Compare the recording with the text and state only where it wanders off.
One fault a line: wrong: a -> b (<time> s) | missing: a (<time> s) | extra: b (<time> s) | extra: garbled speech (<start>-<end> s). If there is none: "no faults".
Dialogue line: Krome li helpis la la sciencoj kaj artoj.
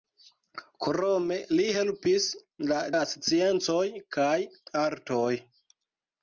no faults